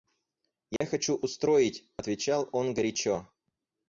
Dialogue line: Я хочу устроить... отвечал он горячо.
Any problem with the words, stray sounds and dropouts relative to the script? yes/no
yes